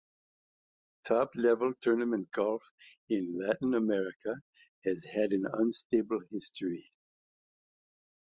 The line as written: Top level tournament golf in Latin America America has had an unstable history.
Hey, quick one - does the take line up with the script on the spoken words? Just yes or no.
no